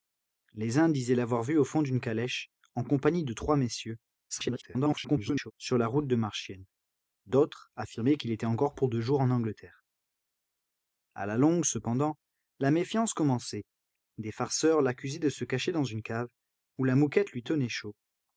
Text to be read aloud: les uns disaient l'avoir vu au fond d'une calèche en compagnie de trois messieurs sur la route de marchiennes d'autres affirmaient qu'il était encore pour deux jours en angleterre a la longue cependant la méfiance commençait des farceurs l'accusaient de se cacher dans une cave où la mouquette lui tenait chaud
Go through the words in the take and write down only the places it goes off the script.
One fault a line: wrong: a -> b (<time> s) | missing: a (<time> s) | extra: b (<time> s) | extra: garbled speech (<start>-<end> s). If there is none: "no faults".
extra: garbled speech (4.3-5.5 s)